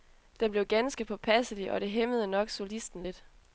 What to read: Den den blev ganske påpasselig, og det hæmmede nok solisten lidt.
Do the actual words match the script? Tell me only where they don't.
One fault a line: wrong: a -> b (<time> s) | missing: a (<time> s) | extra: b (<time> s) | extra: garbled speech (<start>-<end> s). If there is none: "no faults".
missing: den (0.5 s)